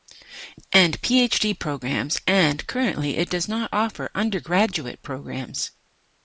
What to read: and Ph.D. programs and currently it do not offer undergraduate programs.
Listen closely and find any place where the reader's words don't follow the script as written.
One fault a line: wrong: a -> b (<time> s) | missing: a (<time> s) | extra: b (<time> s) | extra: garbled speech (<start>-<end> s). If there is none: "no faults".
wrong: do -> does (3.3 s)